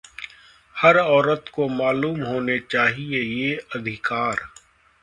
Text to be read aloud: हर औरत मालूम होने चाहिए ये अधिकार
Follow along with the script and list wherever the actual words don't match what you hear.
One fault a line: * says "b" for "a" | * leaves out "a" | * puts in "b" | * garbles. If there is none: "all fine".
* puts in "को"